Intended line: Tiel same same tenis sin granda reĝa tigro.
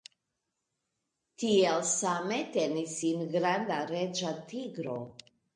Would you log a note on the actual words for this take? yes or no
yes